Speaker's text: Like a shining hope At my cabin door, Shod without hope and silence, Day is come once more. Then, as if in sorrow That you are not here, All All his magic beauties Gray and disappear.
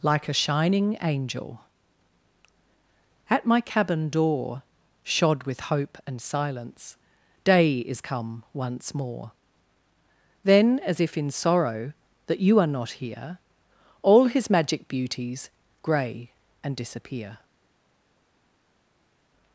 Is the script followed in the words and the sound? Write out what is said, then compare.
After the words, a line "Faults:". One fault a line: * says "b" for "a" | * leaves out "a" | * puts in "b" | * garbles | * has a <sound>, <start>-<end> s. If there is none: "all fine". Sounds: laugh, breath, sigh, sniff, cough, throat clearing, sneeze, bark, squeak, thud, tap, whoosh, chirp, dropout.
Like a shining angel At my cabin door, Shod with hope and silence, Day is come once more. Then, as if in sorrow That you are not here, All his magic beauties Gray and disappear.
Faults:
* says "angel" for "hope"
* says "with" for "without"
* leaves out "All"